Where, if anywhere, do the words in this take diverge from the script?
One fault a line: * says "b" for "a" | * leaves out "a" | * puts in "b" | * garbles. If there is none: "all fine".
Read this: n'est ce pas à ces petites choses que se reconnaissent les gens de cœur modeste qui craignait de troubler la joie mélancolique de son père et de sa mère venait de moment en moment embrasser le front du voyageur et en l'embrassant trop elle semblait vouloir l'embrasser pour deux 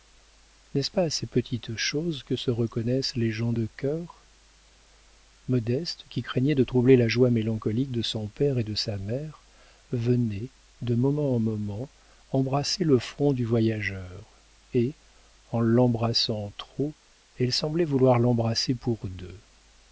all fine